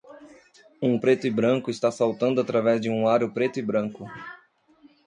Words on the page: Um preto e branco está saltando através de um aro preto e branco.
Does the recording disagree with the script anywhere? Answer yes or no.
no